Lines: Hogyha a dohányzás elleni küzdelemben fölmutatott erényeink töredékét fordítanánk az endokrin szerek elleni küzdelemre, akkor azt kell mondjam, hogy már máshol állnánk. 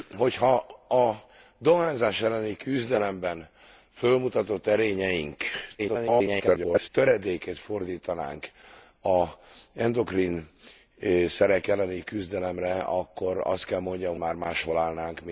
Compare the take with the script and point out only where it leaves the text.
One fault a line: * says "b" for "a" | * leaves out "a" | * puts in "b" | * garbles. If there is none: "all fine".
* garbles
* leaves out "hogy"